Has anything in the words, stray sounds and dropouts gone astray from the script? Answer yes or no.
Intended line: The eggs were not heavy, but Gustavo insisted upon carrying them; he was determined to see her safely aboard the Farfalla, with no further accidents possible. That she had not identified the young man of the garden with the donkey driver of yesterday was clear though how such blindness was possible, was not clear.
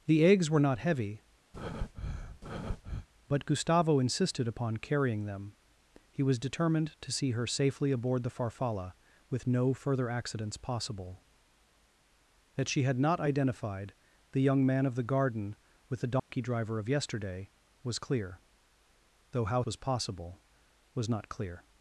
yes